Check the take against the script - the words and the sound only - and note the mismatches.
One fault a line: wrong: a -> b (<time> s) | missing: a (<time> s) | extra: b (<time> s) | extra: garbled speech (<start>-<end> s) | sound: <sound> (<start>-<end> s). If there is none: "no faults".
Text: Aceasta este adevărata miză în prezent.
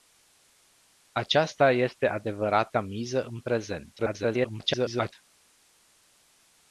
extra: garbled speech (4.0-5.1 s)